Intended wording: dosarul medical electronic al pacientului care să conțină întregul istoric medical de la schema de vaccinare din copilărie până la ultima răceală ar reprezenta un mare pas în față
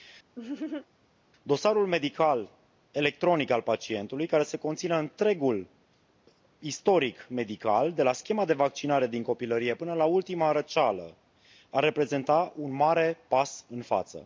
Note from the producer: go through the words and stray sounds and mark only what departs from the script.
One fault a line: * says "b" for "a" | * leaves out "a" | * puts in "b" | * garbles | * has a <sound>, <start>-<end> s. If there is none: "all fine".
* has a laugh, 0.4-0.9 s